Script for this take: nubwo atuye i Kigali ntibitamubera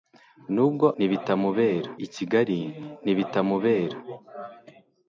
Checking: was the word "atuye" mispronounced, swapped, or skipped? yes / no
yes